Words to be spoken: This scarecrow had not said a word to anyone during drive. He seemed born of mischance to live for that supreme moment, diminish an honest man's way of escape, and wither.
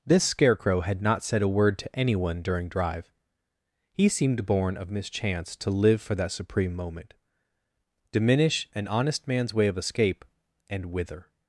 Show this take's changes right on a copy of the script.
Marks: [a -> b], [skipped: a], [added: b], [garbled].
This scarecrow had not said a word to anyone during drive. He seemed born of mischance to live for that supreme moment, diminish an honest man's way of escape, and wither.